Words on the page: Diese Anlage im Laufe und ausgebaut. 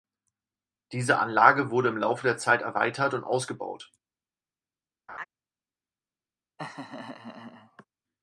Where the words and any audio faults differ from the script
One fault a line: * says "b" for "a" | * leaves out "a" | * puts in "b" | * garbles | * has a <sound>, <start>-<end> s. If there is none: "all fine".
* puts in "wurde"
* puts in "der Zeit erweitert"
* has a laugh, 5.1-5.3 s
* has a laugh, 6.6-7.9 s